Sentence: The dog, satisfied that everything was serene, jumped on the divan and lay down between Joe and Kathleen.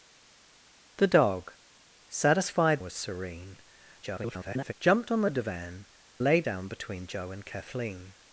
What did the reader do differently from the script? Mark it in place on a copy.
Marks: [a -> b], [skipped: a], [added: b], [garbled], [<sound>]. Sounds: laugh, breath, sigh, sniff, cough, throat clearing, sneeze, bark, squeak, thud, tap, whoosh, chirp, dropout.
The dog, satisfied [skipped: that everything] was serene, [garbled] jumped on the divan [skipped: and] lay down between Joe and Kathleen.